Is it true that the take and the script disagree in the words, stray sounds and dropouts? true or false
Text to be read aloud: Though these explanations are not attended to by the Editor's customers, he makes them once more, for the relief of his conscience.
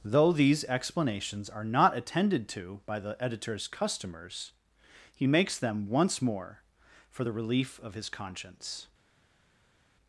false